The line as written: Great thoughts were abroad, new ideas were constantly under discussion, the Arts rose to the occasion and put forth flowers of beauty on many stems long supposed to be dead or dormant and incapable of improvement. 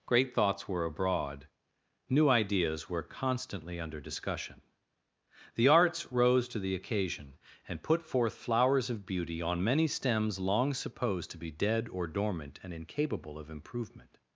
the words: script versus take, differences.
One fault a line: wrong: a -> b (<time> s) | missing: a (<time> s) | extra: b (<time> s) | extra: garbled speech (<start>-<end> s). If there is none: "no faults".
no faults